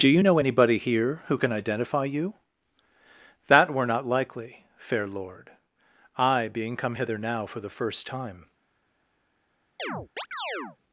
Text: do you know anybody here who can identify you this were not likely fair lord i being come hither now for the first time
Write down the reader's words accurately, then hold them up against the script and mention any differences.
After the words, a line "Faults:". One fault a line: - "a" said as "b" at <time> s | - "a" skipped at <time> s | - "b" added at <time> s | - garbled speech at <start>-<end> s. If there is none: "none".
do you know anybody here who can identify you that were not likely fair lord i being come hither now for the first time
Faults:
- "this" said as "that" at 3.5 s